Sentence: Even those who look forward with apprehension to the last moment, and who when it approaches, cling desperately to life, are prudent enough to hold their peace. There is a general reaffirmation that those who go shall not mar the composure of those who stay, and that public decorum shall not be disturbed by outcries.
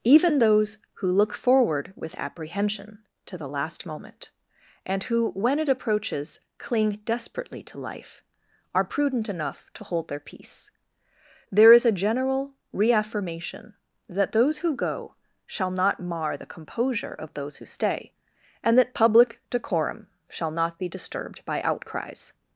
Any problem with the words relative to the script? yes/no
no